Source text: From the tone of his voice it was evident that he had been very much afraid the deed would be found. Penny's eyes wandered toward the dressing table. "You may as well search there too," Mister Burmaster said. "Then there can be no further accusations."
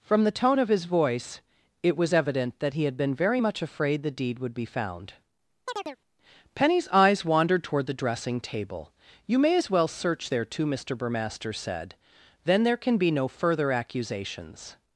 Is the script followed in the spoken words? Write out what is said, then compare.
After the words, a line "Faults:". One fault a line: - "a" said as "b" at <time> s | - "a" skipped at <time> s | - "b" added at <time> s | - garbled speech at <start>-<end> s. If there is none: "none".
From the tone of his voice it was evident that he had been very much afraid the deed would be found. Penny's eyes wandered toward the dressing table. "You may as well search there too," Mister Burmaster said. "Then there can be no further accusations."
Faults:
none